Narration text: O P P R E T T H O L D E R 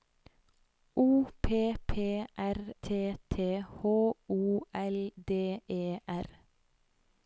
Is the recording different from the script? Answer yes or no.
yes